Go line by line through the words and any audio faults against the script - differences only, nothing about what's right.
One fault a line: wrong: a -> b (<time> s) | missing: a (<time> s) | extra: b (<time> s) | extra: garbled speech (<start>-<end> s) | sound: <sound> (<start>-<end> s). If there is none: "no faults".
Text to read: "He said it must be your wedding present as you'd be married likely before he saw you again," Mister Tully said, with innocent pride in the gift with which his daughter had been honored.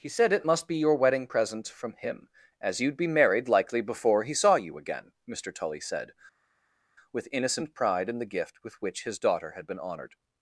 extra: from him (1.7 s)